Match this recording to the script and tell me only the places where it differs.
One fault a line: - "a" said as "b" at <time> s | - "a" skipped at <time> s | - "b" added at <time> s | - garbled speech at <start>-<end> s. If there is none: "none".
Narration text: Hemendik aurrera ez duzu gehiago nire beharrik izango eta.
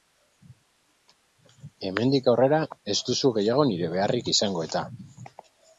none